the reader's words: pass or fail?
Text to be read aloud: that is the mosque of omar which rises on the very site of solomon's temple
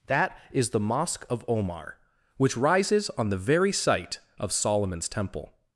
pass